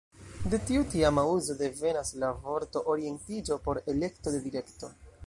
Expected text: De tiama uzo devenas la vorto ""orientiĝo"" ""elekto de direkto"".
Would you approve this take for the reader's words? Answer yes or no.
no